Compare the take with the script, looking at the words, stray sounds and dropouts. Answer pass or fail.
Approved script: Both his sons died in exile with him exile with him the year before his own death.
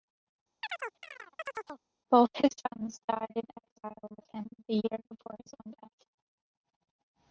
fail